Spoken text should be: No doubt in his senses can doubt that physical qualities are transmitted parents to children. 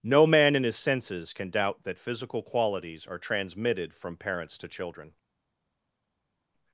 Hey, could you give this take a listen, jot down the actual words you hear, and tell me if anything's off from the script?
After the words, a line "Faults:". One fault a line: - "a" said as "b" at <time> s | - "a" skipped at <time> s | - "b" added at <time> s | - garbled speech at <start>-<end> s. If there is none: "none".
No man in his senses can doubt that physical qualities are transmitted from parents to children.
Faults:
- "doubt" said as "man" at 0.2 s
- "from" added at 3.9 s